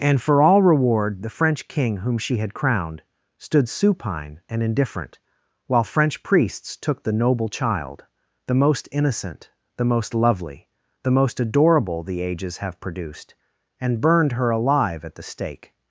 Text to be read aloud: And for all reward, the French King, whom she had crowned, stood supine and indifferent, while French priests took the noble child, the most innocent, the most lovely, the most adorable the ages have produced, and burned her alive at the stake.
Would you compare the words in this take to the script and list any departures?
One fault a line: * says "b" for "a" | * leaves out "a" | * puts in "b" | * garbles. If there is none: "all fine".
all fine